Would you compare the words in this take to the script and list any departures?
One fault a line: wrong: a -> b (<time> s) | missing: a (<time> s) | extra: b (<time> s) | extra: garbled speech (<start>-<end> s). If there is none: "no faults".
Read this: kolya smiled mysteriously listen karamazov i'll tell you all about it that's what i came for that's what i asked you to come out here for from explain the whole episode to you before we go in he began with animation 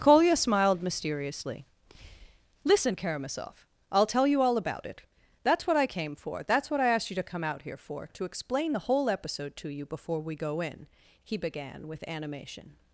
wrong: from -> to (8.1 s)